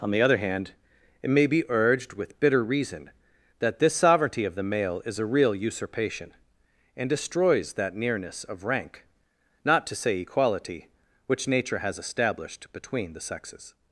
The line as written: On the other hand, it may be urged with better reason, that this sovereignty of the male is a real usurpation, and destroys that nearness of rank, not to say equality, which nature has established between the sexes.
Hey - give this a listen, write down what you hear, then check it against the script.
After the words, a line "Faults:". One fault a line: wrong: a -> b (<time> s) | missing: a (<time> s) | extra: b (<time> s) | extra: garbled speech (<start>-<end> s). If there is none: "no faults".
On the other hand, it may be urged with bitter reason, that this sovereignty of the male is a real usurpation, and destroys that nearness of rank, not to say equality, which nature has established between the sexes.
Faults:
wrong: better -> bitter (2.4 s)